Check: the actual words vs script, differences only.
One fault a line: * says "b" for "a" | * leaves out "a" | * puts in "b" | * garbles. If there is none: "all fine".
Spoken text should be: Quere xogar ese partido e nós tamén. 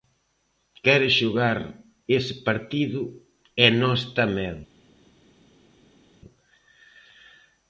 all fine